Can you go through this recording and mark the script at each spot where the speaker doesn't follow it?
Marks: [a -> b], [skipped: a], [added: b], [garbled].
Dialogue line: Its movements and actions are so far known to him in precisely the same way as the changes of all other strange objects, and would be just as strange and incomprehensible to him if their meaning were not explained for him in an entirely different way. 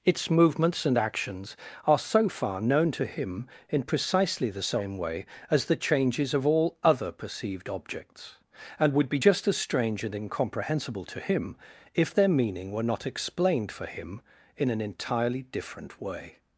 Its movements and actions are so far known to him in precisely the same way as the changes of all other [strange -> perceived] objects, and would be just as strange and incomprehensible to him if their meaning were not explained for him in an entirely different way.